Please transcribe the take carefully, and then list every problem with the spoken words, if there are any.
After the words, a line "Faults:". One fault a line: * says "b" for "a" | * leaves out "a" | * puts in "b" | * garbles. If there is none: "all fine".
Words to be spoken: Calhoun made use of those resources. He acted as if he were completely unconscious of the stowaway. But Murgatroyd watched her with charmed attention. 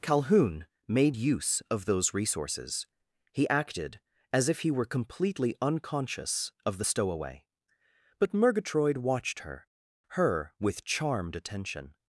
Calhoun made use of those resources. He acted as if he were completely unconscious of the stowaway. But Murgatroyd watched her her with charmed attention.
Faults:
* puts in "her"